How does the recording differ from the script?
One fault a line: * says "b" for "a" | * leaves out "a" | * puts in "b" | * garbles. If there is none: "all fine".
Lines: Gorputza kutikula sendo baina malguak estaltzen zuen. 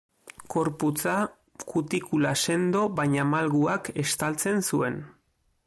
all fine